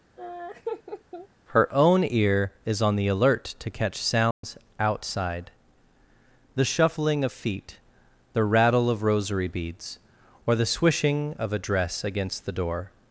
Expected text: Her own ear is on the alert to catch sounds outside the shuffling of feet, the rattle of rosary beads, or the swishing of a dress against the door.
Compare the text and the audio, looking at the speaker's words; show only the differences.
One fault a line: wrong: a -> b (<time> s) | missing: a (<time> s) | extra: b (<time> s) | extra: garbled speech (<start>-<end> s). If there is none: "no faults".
no faults